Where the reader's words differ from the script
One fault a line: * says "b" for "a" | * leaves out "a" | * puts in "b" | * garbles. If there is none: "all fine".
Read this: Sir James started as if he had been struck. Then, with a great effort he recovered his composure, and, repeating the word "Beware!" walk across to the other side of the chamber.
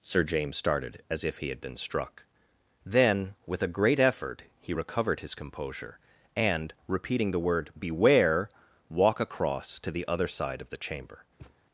all fine